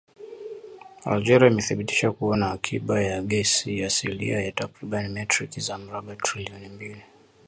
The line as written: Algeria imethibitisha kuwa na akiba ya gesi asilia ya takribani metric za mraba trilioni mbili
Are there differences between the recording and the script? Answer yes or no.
no